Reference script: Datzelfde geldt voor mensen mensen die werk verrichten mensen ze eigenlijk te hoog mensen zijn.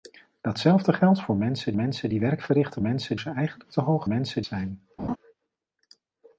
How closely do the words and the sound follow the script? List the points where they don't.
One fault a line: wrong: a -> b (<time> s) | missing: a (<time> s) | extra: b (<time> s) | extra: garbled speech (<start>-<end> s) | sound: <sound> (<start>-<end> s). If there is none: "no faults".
sound: laugh (5.0-5.2 s)